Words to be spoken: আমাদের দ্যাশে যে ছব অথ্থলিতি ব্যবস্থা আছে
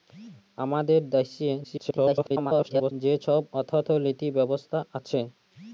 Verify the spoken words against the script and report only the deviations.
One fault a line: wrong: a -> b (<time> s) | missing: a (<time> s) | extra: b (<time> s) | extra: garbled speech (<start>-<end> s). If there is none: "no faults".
extra: garbled speech (1.6-2.9 s)